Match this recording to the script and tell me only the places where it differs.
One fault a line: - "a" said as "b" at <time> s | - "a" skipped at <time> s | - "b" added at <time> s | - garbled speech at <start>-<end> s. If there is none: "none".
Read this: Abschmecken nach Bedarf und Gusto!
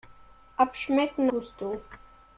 - "nach Bedarf und" skipped at 1.3 s